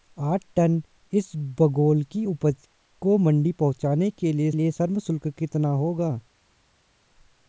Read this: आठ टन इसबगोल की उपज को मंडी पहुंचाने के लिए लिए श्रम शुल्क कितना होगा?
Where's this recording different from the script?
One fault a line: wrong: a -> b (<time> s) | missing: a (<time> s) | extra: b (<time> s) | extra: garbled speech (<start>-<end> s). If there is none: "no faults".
no faults